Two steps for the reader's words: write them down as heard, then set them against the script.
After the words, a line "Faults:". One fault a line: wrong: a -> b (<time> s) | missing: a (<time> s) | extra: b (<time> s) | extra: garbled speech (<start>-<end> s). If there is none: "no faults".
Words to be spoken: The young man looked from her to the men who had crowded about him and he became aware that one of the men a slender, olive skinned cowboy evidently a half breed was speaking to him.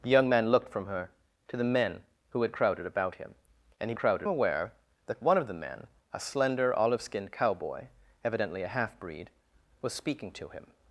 The young man looked from her to the men who had crowded about him and he crowded aware that one of the men a slender, olive skinned cowboy evidently a half breed was speaking to him.
Faults:
wrong: became -> crowded (4.0 s)